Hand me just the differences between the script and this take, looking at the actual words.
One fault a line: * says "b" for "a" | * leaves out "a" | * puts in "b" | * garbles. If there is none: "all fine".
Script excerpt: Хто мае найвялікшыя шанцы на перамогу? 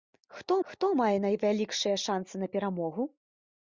* puts in "хто"